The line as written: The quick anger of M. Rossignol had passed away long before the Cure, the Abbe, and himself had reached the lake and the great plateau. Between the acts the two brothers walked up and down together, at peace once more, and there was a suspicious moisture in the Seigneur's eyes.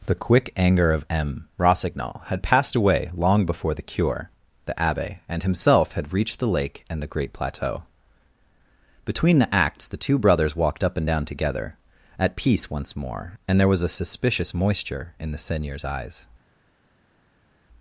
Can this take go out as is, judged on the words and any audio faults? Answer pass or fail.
pass